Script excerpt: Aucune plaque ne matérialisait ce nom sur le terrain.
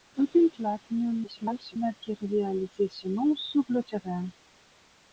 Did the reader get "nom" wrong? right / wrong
right